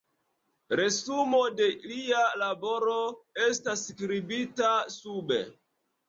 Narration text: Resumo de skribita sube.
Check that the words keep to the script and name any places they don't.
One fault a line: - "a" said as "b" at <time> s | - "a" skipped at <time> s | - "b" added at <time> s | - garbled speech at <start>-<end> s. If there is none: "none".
- "lia laboro estas" added at 1.9 s